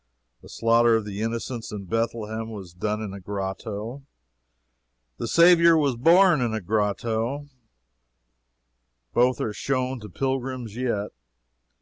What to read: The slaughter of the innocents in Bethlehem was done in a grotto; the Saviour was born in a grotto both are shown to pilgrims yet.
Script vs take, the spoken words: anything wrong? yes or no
no